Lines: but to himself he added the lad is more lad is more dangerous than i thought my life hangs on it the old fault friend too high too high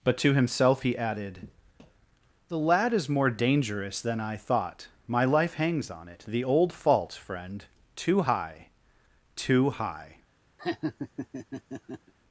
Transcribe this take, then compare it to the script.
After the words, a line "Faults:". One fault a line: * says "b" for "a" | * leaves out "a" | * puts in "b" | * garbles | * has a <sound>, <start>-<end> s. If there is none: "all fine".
but to himself he added the lad is more dangerous than i thought my life hangs on it the old fault friend too high too high
Faults:
* leaves out "lad is more"
* has a laugh, 10.6-12.1 s